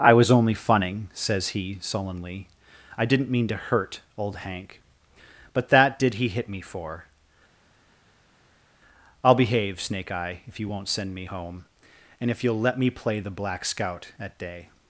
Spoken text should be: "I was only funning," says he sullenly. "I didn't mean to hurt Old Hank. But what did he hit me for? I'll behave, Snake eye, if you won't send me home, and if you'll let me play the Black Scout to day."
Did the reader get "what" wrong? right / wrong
wrong